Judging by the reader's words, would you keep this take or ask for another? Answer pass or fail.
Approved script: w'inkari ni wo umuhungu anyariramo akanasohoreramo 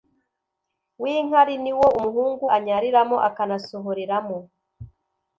pass